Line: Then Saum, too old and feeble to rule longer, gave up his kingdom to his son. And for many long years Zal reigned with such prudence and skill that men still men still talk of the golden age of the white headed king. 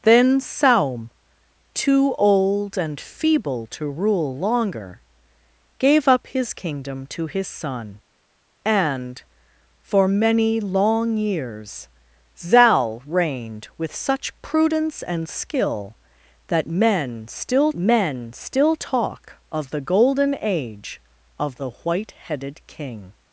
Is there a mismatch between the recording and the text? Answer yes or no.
no